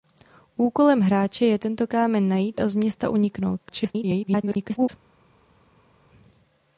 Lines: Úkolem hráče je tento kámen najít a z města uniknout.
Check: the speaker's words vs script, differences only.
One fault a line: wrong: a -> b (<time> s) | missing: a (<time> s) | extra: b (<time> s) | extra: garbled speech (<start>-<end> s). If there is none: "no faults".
extra: garbled speech (3.7-4.9 s)